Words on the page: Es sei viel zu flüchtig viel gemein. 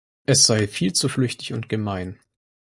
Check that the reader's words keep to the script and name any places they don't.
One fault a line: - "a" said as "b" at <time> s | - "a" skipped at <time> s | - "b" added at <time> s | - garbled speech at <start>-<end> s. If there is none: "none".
- "viel" said as "und" at 1.5 s